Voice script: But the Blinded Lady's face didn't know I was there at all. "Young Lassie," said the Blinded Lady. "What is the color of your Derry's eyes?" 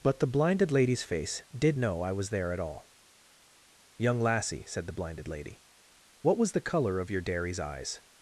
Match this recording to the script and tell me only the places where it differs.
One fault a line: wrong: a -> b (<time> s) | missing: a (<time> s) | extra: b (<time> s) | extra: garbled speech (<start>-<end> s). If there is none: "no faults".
wrong: didn't -> did (1.6 s)
wrong: is -> was (6.4 s)